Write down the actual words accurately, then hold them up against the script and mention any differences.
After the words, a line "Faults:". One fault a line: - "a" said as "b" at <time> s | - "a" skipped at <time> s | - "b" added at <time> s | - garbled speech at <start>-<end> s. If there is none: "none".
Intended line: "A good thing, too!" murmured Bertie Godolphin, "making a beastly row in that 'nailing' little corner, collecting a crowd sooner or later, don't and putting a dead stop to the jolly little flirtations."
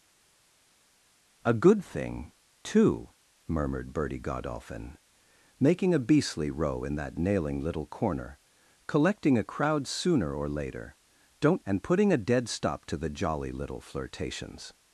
"A good thing, too!" murmured Bertie Godolphin, "making a beastly row in that 'nailing' little corner, collecting a crowd sooner or later, don't and putting a dead stop to the jolly little flirtations."
Faults:
none